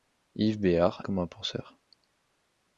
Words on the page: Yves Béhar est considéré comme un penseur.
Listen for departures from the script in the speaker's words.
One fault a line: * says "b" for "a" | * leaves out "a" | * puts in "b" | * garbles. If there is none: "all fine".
* leaves out "est considéré"